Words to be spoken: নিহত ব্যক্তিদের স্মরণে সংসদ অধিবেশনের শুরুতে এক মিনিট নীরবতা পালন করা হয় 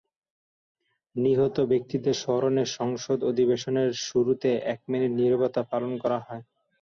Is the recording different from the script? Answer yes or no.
no